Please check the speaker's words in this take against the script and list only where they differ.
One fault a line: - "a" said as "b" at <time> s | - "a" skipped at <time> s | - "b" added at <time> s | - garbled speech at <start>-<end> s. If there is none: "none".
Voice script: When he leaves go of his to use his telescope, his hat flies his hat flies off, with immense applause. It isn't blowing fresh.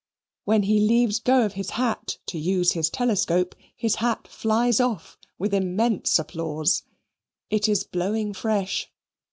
- "hat" added at 1.8 s
- "his hat flies" skipped at 4.8 s
- "isn't" said as "is" at 7.7 s